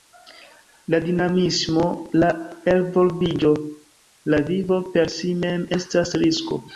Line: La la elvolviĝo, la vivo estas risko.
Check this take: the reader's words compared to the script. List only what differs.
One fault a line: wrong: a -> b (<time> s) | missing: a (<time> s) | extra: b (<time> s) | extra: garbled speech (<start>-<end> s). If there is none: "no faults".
extra: dinamismo (1.0 s)
extra: per si mem (5.0 s)